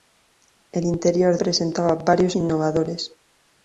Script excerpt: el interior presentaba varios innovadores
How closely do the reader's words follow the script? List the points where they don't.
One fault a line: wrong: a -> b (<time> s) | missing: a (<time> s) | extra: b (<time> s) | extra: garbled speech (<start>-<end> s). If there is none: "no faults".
no faults